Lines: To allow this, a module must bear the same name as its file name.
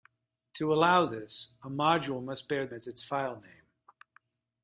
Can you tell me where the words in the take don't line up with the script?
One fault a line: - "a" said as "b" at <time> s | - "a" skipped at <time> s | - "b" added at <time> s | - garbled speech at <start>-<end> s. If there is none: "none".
- "same name" skipped at 2.7 s